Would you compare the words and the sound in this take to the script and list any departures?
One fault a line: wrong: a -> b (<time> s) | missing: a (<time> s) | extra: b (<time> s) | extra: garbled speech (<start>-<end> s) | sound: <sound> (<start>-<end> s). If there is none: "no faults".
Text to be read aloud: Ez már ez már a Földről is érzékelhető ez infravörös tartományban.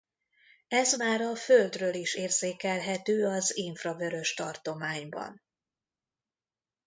missing: ez már (1.2 s)
wrong: ez -> az (3.3 s)